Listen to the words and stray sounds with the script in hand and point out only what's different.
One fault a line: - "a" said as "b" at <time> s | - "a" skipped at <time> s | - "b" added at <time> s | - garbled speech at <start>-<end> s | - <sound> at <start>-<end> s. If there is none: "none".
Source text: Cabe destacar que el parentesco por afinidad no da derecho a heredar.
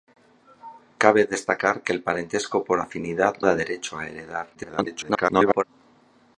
- "no" skipped at 3.4 s
- garbled speech at 4.5-5.6 s